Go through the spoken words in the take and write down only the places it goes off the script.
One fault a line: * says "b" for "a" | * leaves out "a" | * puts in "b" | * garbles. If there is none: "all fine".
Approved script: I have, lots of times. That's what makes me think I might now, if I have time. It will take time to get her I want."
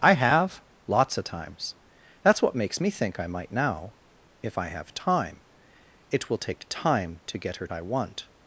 all fine